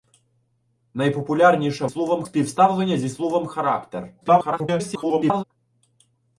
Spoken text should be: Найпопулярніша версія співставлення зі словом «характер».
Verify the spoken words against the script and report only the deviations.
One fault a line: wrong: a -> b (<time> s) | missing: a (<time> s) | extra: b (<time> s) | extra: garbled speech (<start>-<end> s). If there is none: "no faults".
wrong: версія -> словом (1.9 s)
extra: garbled speech (4.2-5.4 s)